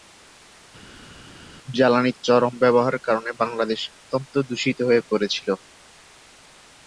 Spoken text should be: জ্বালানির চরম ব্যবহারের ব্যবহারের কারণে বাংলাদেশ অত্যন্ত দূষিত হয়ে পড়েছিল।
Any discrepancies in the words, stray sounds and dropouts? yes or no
yes